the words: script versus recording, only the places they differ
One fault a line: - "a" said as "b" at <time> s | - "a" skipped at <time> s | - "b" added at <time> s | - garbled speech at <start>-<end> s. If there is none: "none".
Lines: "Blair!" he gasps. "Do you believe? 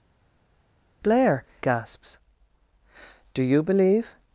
- "he" skipped at 1.4 s